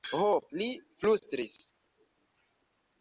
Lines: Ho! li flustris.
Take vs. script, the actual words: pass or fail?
pass